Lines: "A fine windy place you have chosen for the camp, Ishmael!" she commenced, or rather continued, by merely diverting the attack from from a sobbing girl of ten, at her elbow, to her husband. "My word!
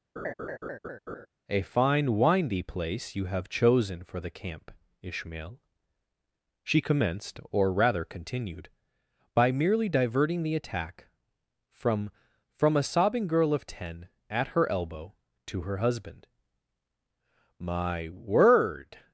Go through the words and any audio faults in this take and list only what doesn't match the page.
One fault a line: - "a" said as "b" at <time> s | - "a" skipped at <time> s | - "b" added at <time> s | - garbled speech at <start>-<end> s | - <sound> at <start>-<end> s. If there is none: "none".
- laugh at 0.2-1.3 s